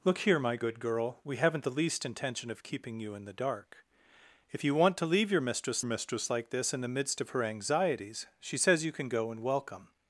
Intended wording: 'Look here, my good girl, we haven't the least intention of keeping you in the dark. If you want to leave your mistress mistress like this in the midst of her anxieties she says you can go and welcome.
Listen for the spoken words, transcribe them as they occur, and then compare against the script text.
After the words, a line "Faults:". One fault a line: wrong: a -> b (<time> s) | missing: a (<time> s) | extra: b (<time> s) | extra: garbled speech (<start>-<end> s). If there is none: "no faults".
'Look here, my good girl, we haven't the least intention of keeping you in the dark. If you want to leave your mistress mistress like this in the midst of her anxieties she says you can go and welcome.
Faults:
no faults